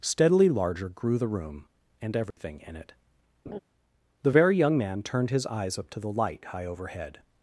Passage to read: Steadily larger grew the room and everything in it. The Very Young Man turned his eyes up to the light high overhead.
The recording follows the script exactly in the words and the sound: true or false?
false